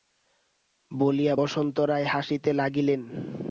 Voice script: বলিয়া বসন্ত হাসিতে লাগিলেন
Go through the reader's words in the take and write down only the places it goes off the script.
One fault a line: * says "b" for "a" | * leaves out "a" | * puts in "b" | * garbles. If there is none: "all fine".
* puts in "রায়"